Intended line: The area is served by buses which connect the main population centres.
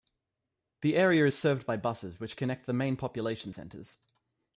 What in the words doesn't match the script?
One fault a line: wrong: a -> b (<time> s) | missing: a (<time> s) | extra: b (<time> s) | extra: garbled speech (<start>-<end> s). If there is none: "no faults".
no faults